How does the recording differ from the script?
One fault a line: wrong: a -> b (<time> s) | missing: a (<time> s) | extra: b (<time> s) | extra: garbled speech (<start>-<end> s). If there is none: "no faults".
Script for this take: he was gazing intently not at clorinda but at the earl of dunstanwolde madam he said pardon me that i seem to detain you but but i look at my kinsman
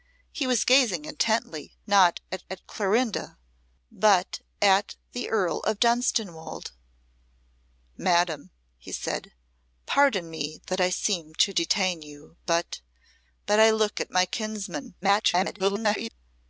extra: at (2.5 s)
extra: garbled speech (15.0-16.1 s)